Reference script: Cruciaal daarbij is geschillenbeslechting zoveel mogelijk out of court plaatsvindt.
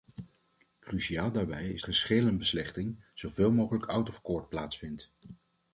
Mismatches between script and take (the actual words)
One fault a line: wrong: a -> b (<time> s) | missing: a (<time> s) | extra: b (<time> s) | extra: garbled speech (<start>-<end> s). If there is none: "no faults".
no faults